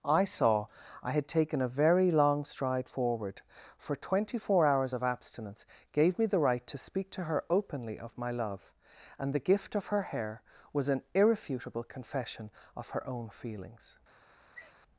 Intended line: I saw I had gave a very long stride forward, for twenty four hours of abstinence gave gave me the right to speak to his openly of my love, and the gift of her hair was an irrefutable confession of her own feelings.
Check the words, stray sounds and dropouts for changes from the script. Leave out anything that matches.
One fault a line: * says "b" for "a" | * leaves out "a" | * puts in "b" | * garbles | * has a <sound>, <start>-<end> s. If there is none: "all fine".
* says "taken" for "gave"
* leaves out "gave"
* says "her" for "his"
* has a sneeze, 14.5-14.8 s